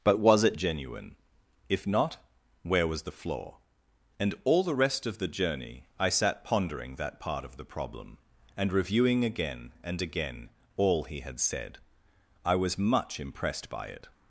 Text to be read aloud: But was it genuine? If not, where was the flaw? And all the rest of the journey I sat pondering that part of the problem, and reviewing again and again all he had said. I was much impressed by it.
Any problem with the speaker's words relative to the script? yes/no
no